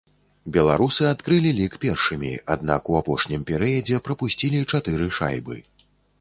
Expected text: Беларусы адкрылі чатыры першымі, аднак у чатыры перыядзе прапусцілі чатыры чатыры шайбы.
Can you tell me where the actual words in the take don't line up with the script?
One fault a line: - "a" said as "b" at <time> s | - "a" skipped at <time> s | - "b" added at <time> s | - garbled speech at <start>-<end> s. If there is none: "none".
- "чатыры" said as "лік" at 1.6 s
- "чатыры" said as "апошнім" at 3.0 s
- "чатыры" skipped at 5.1 s